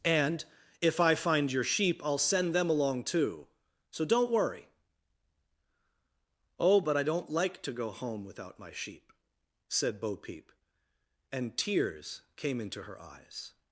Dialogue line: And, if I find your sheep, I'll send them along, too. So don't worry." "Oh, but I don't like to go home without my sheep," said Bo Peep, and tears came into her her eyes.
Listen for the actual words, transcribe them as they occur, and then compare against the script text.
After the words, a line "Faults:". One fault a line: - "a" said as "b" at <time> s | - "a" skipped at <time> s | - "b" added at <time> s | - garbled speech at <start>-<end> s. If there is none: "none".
And, if I find your sheep, I'll send them along, too. So don't worry." "Oh, but I don't like to go home without my sheep," said Bo Peep, and tears came into her eyes.
Faults:
- "her" skipped at 13.0 s